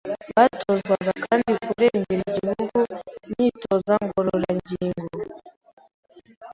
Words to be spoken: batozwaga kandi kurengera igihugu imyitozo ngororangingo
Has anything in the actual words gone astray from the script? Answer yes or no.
no